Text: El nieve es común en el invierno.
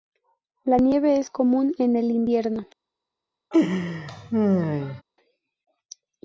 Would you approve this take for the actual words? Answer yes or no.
no